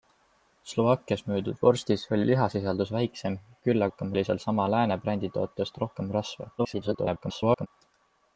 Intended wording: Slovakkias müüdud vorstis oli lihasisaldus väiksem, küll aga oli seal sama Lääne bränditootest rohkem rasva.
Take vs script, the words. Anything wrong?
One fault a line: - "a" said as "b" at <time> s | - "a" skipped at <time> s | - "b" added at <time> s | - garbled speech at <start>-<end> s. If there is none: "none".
- "aga" said as "rohkem" at 3.9 s
- garbled speech at 6.6-7.7 s